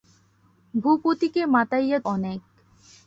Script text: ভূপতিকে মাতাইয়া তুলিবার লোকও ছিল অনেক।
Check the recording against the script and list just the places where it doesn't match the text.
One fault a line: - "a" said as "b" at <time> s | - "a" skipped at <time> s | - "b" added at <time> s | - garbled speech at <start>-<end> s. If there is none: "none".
- "তুলিবার লোকও ছিল" skipped at 2.0 s